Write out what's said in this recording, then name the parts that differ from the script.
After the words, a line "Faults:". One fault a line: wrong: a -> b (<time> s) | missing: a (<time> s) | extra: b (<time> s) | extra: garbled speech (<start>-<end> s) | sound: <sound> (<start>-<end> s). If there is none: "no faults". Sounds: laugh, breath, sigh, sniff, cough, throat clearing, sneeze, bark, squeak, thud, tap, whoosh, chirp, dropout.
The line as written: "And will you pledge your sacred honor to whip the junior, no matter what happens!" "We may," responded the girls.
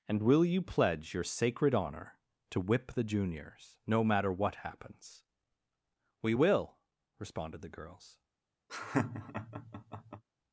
"And will you pledge your sacred honor to whip the juniors, no matter what happens!" "We will," responded the girls.
Faults:
wrong: junior -> juniors (3.0 s)
wrong: may -> will (6.3 s)
sound: laugh (8.7-10.2 s)